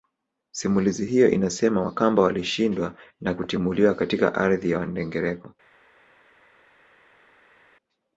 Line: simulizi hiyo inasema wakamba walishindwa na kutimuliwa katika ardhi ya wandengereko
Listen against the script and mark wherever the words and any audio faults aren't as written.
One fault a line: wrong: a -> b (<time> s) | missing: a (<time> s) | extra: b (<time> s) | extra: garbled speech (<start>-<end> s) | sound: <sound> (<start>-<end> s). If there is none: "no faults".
no faults